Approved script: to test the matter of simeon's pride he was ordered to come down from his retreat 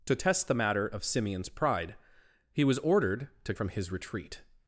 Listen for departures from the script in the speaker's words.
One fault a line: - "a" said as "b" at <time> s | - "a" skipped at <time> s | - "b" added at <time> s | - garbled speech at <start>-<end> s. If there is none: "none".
- "come down" skipped at 3.5 s